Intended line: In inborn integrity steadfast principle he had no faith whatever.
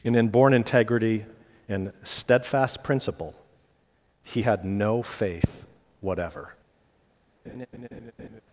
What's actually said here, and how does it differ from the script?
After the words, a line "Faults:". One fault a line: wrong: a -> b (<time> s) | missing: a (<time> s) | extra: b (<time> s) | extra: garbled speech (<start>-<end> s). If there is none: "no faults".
In inborn integrity and steadfast principle he had no faith whatever.
Faults:
extra: and (1.7 s)